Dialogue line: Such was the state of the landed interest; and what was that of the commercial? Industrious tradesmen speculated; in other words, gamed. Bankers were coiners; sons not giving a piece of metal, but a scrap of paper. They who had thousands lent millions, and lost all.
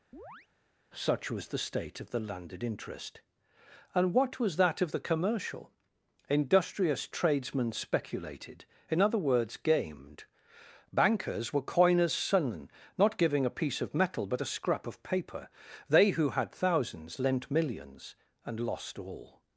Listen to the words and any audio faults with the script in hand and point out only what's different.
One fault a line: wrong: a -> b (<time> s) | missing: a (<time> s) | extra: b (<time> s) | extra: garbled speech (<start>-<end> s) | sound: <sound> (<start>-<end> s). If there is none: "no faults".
sound: chirp (0.1-0.5 s)